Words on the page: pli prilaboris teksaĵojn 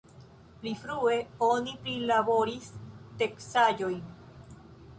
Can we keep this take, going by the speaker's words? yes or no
no